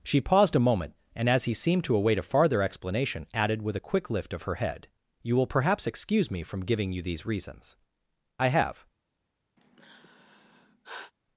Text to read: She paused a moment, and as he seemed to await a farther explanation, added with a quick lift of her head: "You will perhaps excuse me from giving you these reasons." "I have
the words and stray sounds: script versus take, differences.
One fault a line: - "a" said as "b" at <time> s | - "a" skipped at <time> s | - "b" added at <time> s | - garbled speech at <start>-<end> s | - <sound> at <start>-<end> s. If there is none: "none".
- sigh at 9.6-11.1 s